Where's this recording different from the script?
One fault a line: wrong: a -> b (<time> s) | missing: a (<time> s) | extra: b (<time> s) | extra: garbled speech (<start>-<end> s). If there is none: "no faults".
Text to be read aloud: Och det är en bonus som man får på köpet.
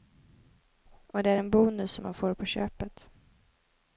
no faults